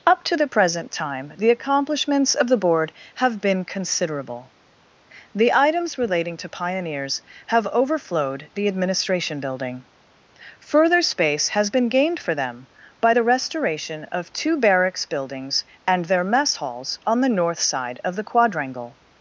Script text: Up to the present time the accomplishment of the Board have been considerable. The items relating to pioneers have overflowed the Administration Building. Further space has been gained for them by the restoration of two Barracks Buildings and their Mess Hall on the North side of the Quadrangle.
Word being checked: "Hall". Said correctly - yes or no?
no